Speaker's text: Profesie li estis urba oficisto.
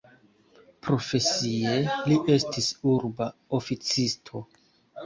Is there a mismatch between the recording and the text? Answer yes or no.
no